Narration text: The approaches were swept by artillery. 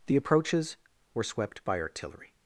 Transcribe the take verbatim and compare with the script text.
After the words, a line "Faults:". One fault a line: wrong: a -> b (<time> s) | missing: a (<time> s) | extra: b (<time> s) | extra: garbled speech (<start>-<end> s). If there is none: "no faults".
The approaches were swept by artillery.
Faults:
no faults